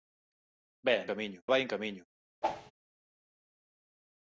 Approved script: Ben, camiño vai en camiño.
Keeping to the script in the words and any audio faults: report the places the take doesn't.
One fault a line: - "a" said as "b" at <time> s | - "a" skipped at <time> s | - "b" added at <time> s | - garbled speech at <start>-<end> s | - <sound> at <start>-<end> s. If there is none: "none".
- whoosh at 2.4-2.7 s